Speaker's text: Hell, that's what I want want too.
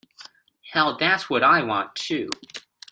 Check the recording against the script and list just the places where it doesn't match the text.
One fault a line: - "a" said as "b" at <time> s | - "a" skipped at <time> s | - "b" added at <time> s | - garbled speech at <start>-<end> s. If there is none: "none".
- "want" skipped at 1.9 s